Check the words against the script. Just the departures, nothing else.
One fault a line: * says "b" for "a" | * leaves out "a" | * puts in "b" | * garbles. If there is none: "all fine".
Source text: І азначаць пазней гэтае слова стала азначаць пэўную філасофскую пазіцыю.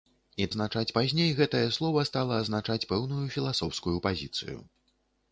all fine